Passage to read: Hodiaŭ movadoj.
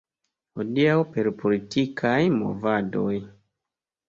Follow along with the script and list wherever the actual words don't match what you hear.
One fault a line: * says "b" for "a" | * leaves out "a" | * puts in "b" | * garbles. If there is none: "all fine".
* puts in "per politikaj"